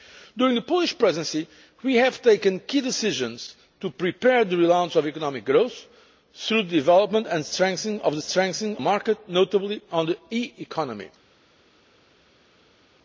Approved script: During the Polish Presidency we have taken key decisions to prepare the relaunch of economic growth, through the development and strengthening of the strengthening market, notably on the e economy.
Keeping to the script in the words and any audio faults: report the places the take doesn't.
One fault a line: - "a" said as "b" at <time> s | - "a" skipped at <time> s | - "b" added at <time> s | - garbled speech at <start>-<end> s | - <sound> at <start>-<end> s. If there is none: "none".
none